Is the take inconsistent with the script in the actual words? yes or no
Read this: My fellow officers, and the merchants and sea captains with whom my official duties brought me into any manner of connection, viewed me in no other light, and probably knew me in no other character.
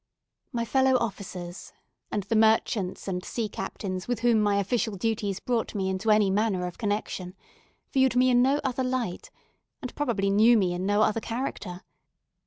no